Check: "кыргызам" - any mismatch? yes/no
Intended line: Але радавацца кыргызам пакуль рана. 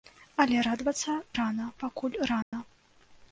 yes